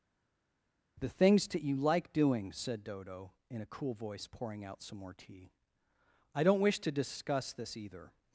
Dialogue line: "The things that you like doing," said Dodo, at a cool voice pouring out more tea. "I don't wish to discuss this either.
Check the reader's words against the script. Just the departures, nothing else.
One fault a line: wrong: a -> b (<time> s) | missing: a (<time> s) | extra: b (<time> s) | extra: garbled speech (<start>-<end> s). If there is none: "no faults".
wrong: at -> in (3.5 s)
extra: some (4.8 s)